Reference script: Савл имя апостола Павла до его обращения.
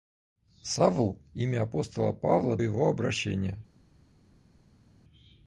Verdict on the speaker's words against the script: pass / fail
fail